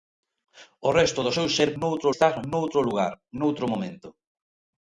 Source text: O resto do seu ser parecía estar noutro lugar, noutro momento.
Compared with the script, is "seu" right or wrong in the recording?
right